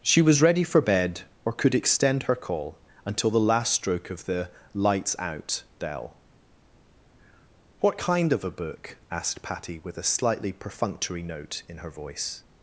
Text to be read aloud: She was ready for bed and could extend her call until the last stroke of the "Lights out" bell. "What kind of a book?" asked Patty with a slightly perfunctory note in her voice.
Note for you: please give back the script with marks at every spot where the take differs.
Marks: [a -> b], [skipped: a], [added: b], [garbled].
She was ready for bed [and -> or] could extend her call until the last stroke of the "Lights out" bell. "What kind of a book?" asked Patty with a slightly perfunctory note in her voice.